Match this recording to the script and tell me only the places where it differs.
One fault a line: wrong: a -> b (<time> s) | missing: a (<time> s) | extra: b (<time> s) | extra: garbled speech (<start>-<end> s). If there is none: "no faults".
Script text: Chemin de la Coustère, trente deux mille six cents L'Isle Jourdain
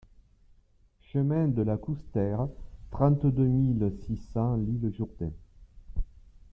no faults